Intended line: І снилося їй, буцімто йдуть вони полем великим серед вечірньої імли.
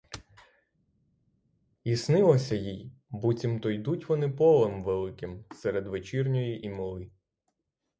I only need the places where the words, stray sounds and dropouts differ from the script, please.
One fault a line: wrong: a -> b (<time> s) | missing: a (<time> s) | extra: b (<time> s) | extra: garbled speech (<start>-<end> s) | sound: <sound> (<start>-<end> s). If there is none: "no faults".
no faults